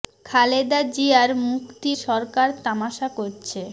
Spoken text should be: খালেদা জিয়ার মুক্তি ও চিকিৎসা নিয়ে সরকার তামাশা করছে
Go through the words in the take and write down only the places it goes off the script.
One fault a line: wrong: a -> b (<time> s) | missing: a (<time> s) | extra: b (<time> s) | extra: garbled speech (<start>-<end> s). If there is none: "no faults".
missing: ও চিকিৎসা নিয়ে (1.9 s)